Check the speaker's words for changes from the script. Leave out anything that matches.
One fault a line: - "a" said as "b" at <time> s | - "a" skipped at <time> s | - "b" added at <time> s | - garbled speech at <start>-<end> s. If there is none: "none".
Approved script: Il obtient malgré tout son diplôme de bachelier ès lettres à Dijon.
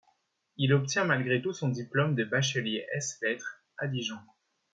none